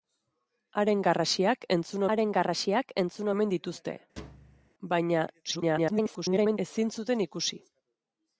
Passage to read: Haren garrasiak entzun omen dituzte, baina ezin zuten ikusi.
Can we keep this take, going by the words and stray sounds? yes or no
no